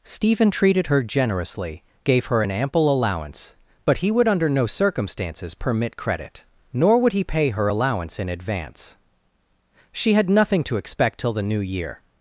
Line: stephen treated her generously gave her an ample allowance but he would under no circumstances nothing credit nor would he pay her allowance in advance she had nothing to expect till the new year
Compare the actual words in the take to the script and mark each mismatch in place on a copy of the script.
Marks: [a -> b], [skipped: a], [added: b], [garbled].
stephen treated her generously gave her an ample allowance but he would under no circumstances [nothing -> permit] credit nor would he pay her allowance in advance she had nothing to expect till the new year